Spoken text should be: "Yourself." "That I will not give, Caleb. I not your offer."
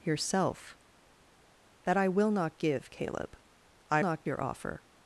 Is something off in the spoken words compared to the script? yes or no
no